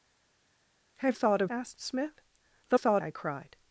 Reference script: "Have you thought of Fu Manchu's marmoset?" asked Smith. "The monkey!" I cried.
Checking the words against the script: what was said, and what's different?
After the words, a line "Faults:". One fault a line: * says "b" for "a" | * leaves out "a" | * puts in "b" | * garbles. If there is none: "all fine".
"Have thought of?" Asked Smith. "The thought!" I cried.
Faults:
* leaves out "you"
* leaves out "Fu Manchu's marmoset"
* says "thought" for "monkey"